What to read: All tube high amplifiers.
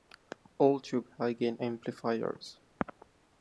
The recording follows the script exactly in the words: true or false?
false